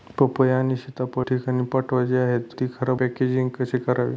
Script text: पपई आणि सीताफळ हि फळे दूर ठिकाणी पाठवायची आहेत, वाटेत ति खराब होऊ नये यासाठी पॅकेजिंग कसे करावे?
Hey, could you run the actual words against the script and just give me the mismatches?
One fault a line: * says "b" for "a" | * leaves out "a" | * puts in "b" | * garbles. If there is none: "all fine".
* leaves out "हि फळे दूर"
* leaves out "वाटेत"
* leaves out "होऊ नये यासाठी"